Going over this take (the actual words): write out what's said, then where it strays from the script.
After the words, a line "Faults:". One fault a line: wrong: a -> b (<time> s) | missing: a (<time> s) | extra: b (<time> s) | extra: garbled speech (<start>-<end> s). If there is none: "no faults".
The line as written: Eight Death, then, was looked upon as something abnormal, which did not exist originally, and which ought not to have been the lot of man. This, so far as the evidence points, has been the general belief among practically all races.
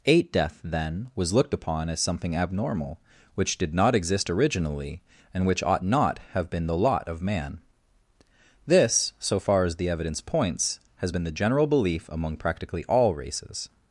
Eight Death, then, was looked upon as something abnormal, which did not exist originally, and which ought not have been the lot of man. This, so far as the evidence points, has been the general belief among practically all races.
Faults:
missing: to (6.2 s)